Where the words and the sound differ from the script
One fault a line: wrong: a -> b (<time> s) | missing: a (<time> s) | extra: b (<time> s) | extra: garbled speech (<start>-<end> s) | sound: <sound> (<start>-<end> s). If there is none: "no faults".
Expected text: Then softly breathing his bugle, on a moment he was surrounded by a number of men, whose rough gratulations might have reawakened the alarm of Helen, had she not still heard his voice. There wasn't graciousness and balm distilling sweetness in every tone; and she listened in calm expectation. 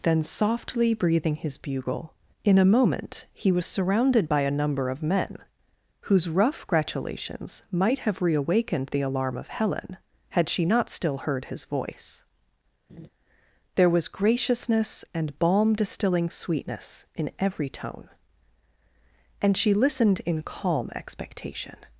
wrong: on -> in (2.4 s)
sound: laugh (12.9-13.1 s)
wrong: wasn't -> was (13.9 s)